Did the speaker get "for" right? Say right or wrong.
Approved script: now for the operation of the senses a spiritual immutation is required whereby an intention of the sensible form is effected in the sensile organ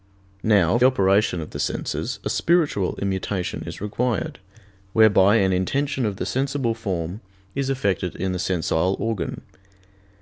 wrong